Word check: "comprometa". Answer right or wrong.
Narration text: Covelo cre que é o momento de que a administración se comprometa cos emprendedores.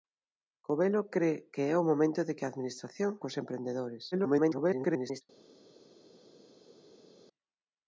wrong